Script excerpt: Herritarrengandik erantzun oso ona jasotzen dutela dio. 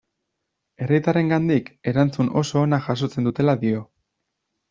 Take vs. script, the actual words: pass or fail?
pass